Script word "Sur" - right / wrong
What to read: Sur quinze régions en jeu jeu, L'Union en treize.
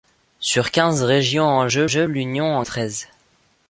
right